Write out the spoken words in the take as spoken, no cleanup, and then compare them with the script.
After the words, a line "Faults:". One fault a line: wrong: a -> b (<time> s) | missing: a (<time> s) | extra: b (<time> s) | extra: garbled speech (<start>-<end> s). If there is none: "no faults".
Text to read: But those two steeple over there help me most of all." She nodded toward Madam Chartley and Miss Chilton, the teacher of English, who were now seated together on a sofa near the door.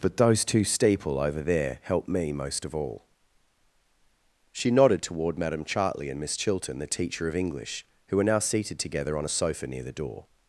But those two steeple over there help me most of all." She nodded toward Madam Chartley and Miss Chilton, the teacher of English, who were now seated together on a sofa near the door.
Faults:
no faults